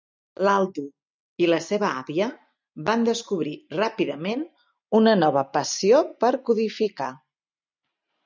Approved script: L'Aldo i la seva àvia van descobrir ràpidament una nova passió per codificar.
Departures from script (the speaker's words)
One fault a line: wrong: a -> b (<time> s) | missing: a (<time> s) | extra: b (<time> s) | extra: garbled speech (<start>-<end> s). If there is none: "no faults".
no faults